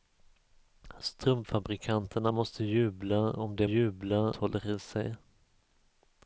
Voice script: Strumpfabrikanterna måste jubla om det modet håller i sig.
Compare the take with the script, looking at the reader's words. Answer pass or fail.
fail